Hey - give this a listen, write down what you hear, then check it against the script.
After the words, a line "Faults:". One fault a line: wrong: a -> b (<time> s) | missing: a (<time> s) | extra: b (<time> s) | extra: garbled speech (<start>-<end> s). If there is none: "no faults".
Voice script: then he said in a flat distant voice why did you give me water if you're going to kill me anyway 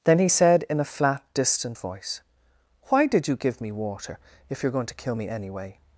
then he said in a flat distant voice why did you give me water if you're going to kill me anyway
Faults:
no faults